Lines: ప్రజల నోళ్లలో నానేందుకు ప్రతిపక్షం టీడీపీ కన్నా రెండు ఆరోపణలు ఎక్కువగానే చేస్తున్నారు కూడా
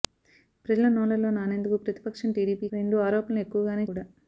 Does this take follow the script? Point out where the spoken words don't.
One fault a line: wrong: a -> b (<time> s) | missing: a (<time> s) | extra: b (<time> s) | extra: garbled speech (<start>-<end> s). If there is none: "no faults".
missing: కన్నా (2.7 s)
missing: చేస్తున్నారు (3.9 s)